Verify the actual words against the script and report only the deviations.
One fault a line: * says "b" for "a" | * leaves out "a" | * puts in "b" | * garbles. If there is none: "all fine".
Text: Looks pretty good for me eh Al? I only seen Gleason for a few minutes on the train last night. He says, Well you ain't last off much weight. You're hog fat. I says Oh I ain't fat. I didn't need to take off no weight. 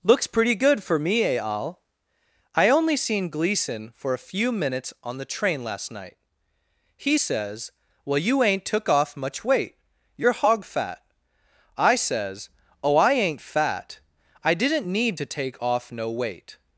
* says "took" for "last"